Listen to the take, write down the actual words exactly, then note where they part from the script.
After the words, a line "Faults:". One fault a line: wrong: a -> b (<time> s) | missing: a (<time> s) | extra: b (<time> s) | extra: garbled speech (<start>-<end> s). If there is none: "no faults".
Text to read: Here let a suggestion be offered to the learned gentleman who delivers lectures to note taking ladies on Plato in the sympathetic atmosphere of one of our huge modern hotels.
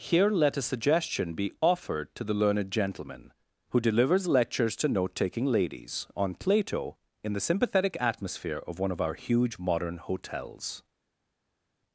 Here let a suggestion be offered to the learned gentleman who delivers lectures to note taking ladies on Plato in the sympathetic atmosphere of one of our huge modern hotels.
Faults:
no faults